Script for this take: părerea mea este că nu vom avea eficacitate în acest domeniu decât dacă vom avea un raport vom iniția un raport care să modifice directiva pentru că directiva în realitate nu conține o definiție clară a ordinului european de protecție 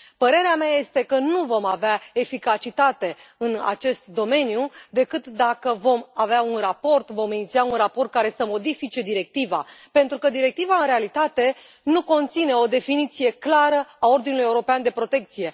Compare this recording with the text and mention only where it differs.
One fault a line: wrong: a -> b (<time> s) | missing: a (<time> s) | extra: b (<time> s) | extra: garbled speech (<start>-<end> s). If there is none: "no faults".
no faults